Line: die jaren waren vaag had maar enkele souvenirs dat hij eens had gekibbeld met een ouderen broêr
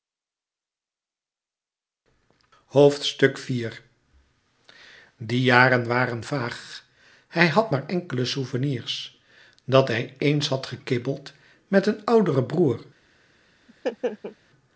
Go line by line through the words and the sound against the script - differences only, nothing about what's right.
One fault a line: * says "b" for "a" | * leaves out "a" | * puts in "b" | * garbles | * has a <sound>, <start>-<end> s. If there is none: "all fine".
* puts in "hij"
* has a laugh, 13.7-14.4 s